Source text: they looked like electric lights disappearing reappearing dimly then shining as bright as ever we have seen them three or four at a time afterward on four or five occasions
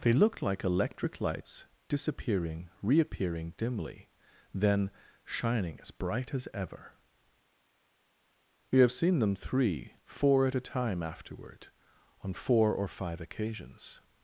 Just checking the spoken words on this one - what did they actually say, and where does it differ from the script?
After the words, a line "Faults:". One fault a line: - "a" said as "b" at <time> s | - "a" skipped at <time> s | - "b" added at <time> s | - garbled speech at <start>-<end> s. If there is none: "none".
they looked like electric lights disappearing reappearing dimly then shining as bright as ever we have seen them three four at a time afterward on four or five occasions
Faults:
- "or" skipped at 10.0 s